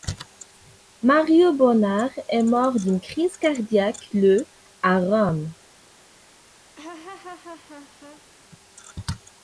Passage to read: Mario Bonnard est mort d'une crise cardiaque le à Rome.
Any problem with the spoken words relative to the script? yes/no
no